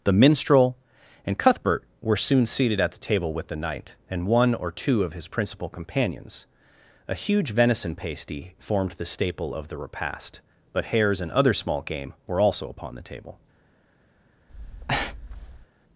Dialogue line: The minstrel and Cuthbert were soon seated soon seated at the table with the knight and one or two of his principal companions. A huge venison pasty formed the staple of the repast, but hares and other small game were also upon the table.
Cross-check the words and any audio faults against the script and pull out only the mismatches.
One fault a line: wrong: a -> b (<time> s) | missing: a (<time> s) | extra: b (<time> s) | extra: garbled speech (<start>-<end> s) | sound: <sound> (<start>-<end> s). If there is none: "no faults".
missing: soon seated (2.8 s)
sound: breath (14.5-15.7 s)